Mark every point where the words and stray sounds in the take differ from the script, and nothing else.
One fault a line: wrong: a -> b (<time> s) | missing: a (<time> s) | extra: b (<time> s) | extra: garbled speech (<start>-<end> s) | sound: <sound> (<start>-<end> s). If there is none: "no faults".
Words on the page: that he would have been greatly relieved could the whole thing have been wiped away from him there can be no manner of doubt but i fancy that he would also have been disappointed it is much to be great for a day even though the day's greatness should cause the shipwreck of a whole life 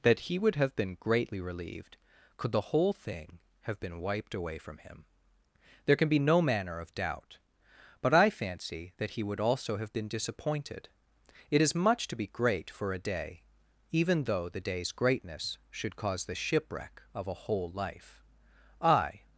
extra: i (18.8 s)